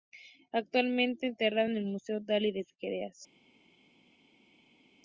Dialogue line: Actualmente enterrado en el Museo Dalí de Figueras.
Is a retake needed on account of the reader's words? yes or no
no